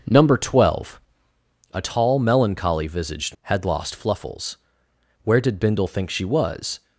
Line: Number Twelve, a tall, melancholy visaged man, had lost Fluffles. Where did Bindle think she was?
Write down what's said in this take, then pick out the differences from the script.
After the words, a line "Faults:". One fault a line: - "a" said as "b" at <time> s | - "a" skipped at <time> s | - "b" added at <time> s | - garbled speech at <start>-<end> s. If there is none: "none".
Number Twelve, a tall, melancholy visaged had lost Fluffles. Where did Bindle think she was?
Faults:
- "man" skipped at 3.4 s